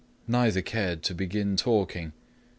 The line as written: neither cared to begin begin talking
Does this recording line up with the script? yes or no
no